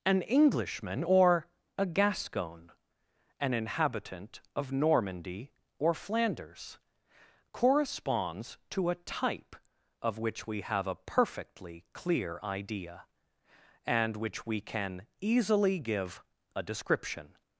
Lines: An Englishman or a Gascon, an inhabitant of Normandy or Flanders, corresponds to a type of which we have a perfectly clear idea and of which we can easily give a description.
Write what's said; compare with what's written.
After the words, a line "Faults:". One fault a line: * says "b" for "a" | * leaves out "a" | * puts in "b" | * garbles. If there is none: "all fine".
An Englishman or a Gascon, an inhabitant of Normandy or Flanders, corresponds to a type of which we have a perfectly clear idea and which we can easily give a description.
Faults:
* leaves out "of"